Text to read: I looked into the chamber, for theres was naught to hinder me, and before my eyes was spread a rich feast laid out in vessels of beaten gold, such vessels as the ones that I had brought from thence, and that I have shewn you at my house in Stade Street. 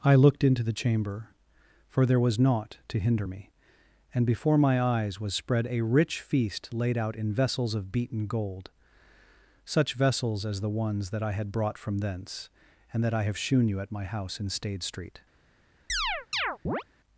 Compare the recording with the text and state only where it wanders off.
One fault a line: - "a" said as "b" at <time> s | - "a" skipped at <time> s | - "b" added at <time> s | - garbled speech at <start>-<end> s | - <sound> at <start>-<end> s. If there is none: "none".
- "theres" said as "there" at 2.1 s
- chirp at 15.9-16.8 s